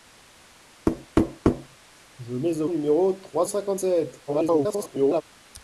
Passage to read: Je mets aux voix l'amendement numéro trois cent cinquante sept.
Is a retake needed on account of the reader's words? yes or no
yes